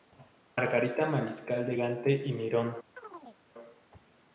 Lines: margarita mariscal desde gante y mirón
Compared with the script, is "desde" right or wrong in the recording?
wrong